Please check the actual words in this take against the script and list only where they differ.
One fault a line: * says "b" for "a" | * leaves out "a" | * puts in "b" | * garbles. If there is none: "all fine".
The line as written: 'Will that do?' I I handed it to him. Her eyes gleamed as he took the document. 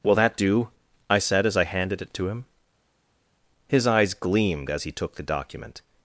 * puts in "said as"
* says "His" for "Her"